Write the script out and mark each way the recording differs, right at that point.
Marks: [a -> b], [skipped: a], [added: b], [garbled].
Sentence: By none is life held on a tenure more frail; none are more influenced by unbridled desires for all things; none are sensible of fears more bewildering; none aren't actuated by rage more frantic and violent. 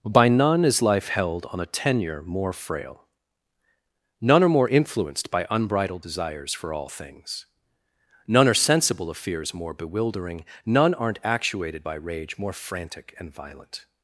By none is life held on a tenure more frail; none are more influenced by unbridled desires for all things; none are sensible of fears more bewildering; none aren't actuated by rage more frantic and violent.